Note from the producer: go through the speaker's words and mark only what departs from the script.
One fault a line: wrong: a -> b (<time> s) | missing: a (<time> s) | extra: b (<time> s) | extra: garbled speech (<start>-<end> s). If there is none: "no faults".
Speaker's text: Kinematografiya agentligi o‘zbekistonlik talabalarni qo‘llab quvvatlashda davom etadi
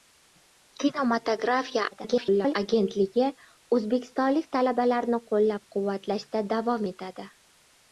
extra: garbled speech (1.9-2.5 s)